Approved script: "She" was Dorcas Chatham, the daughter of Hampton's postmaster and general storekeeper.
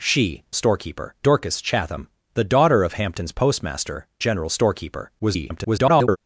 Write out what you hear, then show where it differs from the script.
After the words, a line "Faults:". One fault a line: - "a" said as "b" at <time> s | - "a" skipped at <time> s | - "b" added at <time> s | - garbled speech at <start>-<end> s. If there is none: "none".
"She" storekeeper Dorcas Chatham, the daughter of Hampton's postmaster general storekeeper. [garbled]
Faults:
- "was" said as "storekeeper" at 0.5 s
- "and" skipped at 4.1 s
- garbled speech at 5.2-6.2 s